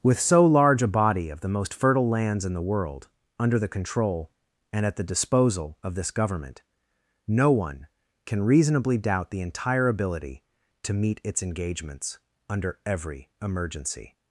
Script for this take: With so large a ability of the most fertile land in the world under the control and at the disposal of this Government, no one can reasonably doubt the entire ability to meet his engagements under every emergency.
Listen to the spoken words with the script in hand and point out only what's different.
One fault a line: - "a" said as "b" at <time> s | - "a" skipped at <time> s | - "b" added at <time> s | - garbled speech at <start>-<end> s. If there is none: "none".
- "ability" said as "body" at 0.9 s
- "land" said as "lands" at 2.1 s
- "his" said as "its" at 11.2 s